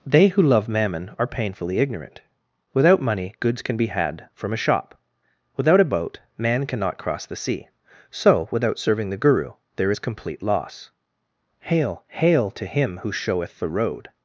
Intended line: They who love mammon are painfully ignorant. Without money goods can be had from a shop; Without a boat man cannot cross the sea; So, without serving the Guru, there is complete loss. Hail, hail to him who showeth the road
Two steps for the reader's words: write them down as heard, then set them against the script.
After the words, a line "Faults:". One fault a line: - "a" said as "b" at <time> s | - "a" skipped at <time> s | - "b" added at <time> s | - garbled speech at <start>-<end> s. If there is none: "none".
They who love mammon are painfully ignorant. Without money goods can be had from a shop; Without a boat man cannot cross the sea; So, without serving the Guru, there is complete loss. Hail, hail to him who showeth the road
Faults:
none